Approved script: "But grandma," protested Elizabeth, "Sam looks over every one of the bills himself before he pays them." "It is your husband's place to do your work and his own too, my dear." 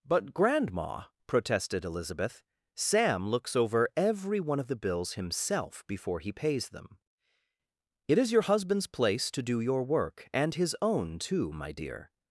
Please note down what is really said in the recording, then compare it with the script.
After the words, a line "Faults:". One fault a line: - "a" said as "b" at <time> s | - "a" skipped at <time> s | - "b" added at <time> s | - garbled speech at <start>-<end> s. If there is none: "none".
"But grandma," protested Elizabeth, "Sam looks over every one of the bills himself before he pays them." "It is your husband's place to do your work and his own too, my dear."
Faults:
none